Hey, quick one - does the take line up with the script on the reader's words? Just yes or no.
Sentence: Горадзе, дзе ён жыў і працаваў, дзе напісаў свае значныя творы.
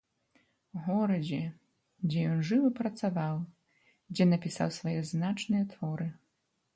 yes